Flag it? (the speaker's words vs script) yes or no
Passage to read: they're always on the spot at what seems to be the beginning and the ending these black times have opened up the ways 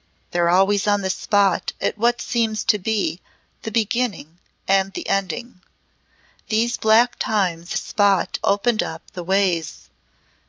yes